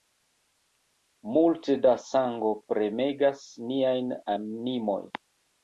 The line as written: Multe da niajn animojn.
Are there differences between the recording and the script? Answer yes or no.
yes